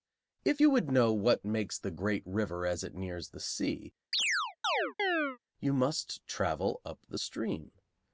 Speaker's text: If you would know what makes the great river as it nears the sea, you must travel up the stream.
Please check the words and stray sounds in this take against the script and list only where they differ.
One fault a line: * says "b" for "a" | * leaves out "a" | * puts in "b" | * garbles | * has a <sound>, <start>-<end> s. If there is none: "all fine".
* has a chirp, 4.1-5.4 s